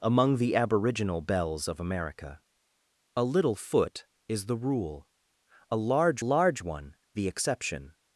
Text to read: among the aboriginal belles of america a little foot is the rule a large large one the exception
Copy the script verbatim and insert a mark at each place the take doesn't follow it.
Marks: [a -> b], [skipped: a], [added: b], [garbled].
among the aboriginal belles of america a little foot is the rule a large large one the exception